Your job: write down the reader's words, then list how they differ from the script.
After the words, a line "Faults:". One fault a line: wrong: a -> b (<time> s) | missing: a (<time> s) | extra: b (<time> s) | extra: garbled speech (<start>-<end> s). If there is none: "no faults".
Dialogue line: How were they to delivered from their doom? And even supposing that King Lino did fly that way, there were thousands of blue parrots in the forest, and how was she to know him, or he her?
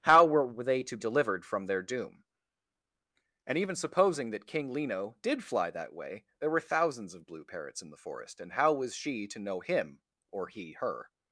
How were they to delivered from their doom? And even supposing that King Lino did fly that way, there were thousands of blue parrots in the forest, and how was she to know him, or he her?
Faults:
no faults